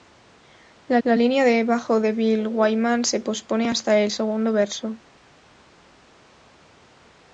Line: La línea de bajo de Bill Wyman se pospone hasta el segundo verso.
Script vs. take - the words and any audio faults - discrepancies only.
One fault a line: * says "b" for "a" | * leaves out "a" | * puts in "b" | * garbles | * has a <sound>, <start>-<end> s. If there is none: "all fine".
* puts in "la"